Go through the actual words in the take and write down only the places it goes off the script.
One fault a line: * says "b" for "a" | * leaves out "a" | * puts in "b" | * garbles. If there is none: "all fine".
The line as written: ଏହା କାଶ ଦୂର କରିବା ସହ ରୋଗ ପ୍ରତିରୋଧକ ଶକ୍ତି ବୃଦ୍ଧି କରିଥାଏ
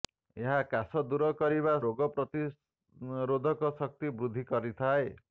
* leaves out "ସହ"